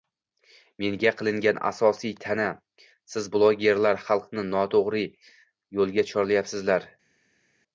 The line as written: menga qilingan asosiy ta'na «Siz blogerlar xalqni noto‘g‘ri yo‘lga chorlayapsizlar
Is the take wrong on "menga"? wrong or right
right